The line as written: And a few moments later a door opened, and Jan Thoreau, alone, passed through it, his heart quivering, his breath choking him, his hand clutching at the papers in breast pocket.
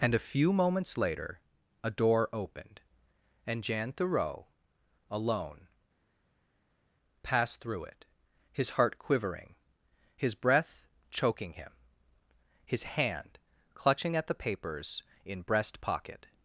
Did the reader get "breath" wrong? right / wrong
right